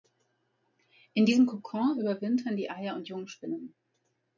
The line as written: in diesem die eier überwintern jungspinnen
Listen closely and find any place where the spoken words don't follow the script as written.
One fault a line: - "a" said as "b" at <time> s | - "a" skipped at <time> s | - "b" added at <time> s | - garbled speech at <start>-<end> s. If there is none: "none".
- "kokon überwintern" added at 1.4 s
- "überwintern" said as "und" at 3.0 s